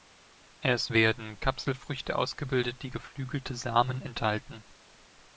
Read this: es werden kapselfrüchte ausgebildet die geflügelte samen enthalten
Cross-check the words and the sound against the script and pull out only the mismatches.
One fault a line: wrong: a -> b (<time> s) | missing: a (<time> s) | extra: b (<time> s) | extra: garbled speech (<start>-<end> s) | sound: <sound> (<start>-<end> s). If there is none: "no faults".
no faults